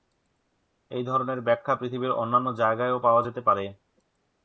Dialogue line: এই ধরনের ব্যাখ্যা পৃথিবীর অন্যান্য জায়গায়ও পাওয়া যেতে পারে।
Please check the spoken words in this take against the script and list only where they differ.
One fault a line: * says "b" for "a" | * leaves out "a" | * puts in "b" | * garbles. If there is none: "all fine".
all fine